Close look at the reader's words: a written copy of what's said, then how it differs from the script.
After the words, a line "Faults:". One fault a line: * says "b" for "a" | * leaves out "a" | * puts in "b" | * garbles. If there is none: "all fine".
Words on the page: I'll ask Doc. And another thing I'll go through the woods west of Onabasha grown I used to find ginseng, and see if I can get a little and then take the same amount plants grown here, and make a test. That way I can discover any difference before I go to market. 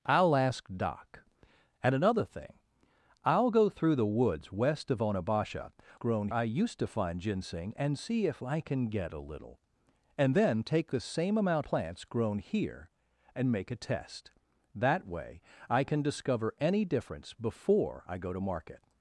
I'll ask Doc. And another thing I'll go through the woods west of Onabasha grown I used to find ginseng, and see if I can get a little and then take the same amount plants grown here, and make a test. That way I can discover any difference before I go to market.
Faults:
all fine